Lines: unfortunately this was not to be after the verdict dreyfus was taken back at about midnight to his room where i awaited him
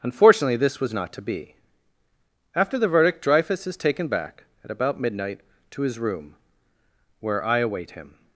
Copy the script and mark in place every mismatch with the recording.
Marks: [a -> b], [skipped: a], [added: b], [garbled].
unfortunately this was not to be after the verdict dreyfus [was -> is] taken back at about midnight to his room where i [awaited -> await] him